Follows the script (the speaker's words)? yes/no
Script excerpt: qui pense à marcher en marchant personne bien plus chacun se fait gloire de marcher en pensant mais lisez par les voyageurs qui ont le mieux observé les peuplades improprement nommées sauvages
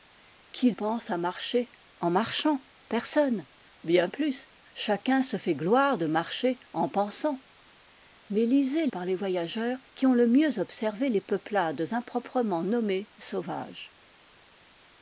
yes